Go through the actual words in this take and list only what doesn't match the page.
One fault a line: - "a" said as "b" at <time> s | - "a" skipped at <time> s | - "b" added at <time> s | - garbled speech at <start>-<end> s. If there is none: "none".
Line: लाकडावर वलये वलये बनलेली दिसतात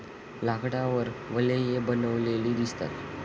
- "वलये" skipped at 1.8 s